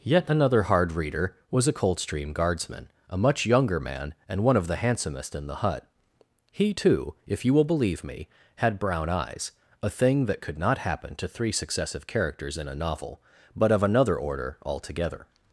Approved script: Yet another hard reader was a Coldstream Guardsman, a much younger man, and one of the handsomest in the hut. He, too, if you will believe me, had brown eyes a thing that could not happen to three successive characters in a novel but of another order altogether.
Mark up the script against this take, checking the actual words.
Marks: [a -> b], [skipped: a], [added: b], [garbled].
Yet another hard reader was a Coldstream Guardsman, a much younger man, and one of the handsomest in the hut. He, too, if you will believe me, had brown eyes a thing that could not happen to three successive characters in a novel but of another order altogether.